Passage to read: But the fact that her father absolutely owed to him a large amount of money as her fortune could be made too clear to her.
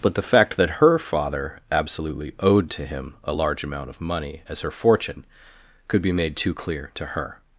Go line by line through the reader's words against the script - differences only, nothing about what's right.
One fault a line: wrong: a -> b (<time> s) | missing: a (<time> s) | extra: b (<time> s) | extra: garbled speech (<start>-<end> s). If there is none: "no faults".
no faults